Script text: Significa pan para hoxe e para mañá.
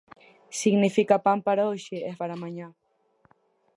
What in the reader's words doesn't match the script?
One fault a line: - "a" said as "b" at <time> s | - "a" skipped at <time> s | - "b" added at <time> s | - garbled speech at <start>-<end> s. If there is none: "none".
none